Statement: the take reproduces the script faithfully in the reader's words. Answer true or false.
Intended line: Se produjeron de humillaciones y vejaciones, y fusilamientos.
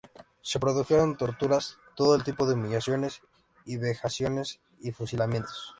false